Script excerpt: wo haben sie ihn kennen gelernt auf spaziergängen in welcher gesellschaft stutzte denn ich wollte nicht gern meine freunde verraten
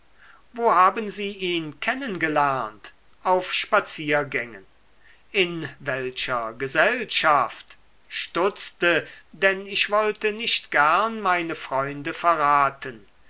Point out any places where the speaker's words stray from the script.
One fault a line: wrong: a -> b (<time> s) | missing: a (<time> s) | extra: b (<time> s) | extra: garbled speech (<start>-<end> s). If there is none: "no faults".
no faults